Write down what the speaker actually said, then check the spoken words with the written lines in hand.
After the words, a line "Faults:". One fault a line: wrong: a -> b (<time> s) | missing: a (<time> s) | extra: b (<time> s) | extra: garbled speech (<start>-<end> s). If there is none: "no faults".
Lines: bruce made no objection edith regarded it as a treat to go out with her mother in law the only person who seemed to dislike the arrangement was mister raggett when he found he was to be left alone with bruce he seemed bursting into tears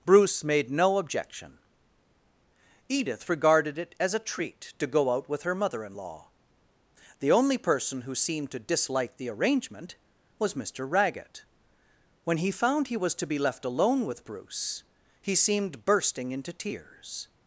bruce made no objection edith regarded it as a treat to go out with her mother in law the only person who seemed to dislike the arrangement was mister raggett when he found he was to be left alone with bruce he seemed bursting into tears
Faults:
no faults